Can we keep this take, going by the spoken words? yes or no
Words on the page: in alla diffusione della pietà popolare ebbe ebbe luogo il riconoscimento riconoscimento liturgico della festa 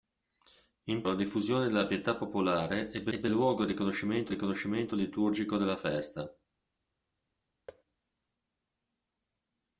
yes